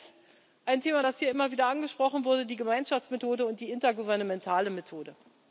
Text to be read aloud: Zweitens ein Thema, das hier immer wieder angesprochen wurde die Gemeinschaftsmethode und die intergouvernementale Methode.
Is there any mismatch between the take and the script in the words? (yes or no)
no